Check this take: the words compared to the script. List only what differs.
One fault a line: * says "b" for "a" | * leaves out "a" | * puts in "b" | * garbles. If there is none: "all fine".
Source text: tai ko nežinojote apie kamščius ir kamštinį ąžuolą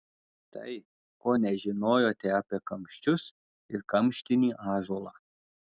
all fine